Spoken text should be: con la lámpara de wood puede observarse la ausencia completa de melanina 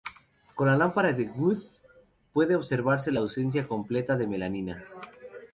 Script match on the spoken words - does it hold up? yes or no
yes